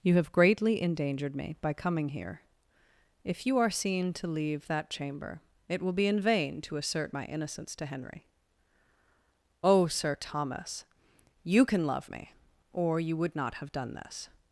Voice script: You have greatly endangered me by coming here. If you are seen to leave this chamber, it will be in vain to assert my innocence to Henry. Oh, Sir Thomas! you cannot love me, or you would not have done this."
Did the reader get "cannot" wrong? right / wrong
wrong